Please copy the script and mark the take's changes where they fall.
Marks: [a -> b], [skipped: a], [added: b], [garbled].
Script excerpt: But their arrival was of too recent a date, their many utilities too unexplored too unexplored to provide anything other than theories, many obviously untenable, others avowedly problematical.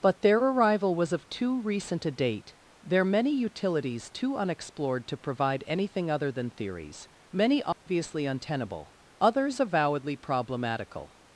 But their arrival was of too recent a date, their many utilities too unexplored [skipped: too unexplored] to provide anything other than theories, many obviously untenable, others avowedly problematical.